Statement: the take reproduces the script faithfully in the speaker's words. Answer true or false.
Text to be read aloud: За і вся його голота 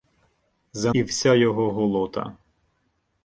true